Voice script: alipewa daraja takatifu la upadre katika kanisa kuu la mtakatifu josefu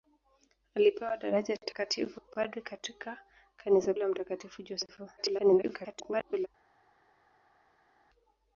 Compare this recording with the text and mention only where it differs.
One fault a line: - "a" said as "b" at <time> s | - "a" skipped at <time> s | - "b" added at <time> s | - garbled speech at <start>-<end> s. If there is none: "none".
- "la" skipped at 2.2 s
- "kuu" skipped at 3.9 s
- garbled speech at 5.2-6.5 s